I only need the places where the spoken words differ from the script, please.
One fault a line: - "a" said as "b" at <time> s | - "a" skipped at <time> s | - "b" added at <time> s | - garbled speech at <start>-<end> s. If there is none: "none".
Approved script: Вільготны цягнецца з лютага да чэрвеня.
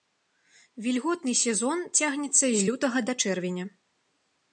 - "сезон" added at 1.4 s